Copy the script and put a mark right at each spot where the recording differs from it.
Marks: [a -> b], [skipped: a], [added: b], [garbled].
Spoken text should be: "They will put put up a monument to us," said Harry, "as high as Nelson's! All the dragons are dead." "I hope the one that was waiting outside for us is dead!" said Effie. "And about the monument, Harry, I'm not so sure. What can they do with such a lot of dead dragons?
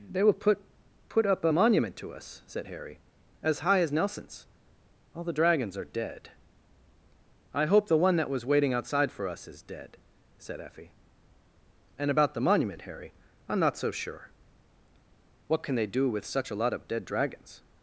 "They will put put up a monument to us," said Harry, "as high as Nelson's! All the dragons are dead." "I hope the one that was waiting outside for us is dead!" said Effie. "And about the monument, Harry, I'm not so sure. What can they do with such a lot of dead dragons?